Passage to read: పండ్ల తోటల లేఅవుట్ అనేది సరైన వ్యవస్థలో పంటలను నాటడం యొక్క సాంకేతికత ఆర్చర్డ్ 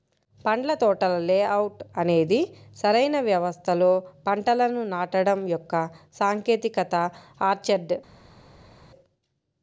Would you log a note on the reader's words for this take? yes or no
no